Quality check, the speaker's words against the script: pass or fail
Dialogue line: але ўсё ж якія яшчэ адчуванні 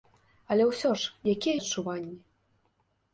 fail